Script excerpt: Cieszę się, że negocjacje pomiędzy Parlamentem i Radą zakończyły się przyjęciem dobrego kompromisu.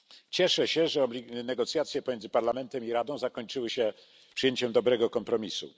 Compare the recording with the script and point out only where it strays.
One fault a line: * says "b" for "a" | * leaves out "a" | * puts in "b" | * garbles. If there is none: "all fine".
all fine